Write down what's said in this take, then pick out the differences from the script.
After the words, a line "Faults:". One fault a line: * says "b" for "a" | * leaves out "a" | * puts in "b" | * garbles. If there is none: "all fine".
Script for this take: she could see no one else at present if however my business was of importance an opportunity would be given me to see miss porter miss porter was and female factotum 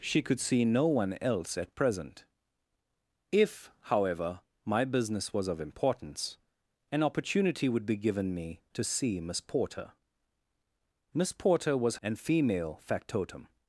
she could see no one else at present if however my business was of importance an opportunity would be given me to see miss porter miss porter was and female factotum
Faults:
all fine